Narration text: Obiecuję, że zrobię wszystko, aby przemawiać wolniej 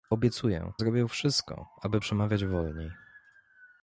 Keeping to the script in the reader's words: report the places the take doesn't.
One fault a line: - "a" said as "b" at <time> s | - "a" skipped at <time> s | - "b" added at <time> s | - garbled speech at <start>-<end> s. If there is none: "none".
- "że" skipped at 0.7 s